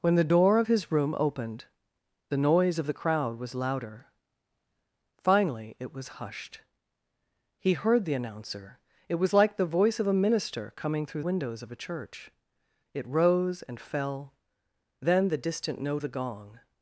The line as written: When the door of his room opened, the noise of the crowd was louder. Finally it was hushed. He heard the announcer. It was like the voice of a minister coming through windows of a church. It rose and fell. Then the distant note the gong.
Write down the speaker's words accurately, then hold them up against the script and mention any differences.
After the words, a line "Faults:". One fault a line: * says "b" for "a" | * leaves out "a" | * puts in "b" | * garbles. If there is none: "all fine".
When the door of his room opened, the noise of the crowd was louder. Finally it was hushed. He heard the announcer. It was like the voice of a minister coming through windows of a church. It rose and fell. Then the distant note the gong.
Faults:
all fine